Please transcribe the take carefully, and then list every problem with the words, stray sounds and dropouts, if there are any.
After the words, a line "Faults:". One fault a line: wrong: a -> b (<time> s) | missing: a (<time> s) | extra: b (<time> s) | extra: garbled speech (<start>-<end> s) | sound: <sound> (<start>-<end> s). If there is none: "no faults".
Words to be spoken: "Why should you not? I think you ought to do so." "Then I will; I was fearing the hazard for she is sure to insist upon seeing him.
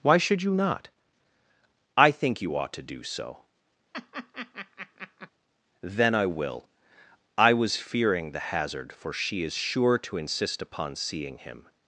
"Why should you not? I think you ought to do so." "Then I will; I was fearing the hazard for she is sure to insist upon seeing him.
Faults:
sound: laugh (3.9-5.3 s)